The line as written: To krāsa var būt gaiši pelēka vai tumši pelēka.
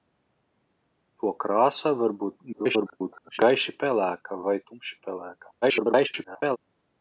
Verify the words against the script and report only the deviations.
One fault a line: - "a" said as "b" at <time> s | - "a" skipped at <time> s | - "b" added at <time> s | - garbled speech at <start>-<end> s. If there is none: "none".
- garbled speech at 2.5-3.4 s
- garbled speech at 5.6-6.6 s